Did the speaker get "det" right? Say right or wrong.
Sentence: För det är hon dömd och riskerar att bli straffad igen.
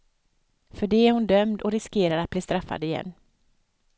right